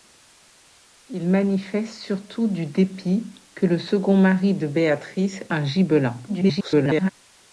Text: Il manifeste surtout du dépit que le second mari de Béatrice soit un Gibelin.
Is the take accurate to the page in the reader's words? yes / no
no